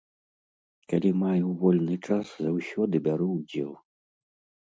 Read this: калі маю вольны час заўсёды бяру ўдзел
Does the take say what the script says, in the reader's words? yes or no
yes